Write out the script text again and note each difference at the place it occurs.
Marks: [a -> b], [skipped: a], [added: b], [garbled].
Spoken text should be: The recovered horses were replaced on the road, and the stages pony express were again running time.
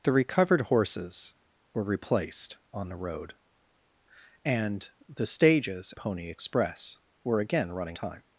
The recovered horses were replaced on the road, and the stages pony express were again running time.